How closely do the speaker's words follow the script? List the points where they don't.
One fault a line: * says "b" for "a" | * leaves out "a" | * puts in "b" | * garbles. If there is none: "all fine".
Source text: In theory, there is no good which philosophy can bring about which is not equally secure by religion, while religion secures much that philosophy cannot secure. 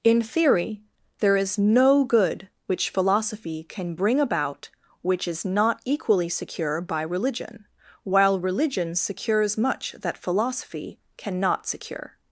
all fine